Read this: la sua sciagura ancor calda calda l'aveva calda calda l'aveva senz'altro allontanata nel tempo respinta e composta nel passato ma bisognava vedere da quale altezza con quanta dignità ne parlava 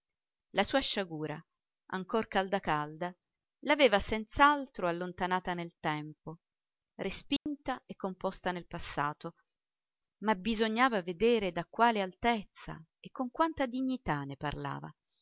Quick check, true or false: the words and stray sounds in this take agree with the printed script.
false